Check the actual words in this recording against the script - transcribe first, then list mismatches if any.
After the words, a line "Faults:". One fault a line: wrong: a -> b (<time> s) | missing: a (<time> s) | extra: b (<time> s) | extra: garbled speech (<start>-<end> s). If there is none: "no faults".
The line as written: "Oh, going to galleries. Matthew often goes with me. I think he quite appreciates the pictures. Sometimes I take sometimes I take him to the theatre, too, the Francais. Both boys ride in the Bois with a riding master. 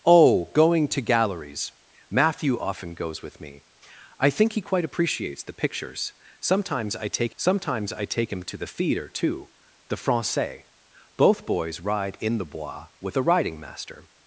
"Oh, going to galleries. Matthew often goes with me. I think he quite appreciates the pictures. Sometimes I take sometimes I take him to the theatre, too, the Francais. Both boys ride in the Bois with a riding master.
Faults:
no faults